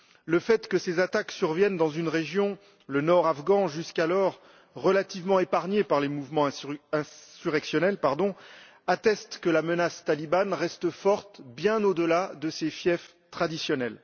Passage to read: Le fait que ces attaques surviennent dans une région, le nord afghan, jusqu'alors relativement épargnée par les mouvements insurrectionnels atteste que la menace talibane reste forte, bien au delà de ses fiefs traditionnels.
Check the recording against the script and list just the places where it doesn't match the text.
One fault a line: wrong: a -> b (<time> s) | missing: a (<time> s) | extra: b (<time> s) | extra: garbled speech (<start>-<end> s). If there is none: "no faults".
no faults